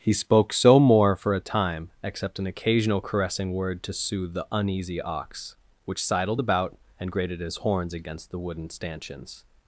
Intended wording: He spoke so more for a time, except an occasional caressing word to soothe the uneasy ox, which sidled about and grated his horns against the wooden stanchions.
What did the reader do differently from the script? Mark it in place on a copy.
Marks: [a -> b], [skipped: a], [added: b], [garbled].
He spoke so more for a time, except an occasional caressing word to soothe the uneasy ox, which sidled about and grated his horns against the wooden stanchions.